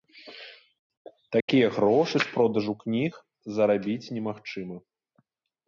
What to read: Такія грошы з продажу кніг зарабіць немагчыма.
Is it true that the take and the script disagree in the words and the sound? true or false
true